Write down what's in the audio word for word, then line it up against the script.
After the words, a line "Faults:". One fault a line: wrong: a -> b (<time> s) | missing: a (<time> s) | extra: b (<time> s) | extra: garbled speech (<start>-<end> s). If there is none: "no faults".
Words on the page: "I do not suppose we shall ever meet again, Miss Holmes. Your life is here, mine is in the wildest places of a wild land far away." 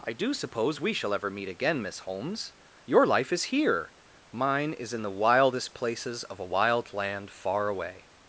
"I do suppose we shall ever meet again, Miss Holmes. Your life is here, mine is in the wildest places of a wild land far away."
Faults:
missing: not (0.3 s)